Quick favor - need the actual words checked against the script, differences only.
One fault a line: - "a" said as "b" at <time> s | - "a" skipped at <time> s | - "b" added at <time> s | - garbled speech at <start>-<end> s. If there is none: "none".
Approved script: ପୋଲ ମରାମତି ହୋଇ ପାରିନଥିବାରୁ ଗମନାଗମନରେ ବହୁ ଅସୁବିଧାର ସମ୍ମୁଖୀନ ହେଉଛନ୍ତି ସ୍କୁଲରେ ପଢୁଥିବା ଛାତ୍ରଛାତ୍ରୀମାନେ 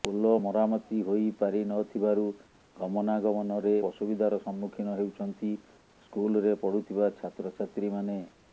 - "ବହୁ" skipped at 3.7 s